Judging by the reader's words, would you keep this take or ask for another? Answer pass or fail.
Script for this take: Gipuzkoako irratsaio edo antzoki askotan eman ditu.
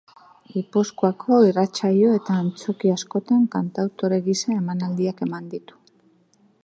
fail